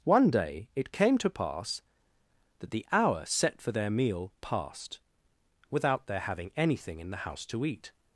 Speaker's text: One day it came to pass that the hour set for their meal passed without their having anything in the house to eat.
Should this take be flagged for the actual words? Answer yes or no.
no